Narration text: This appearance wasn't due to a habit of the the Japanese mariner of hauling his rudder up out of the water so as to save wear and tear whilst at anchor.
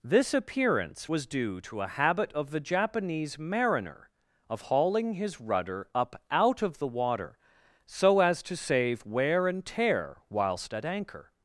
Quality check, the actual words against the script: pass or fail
fail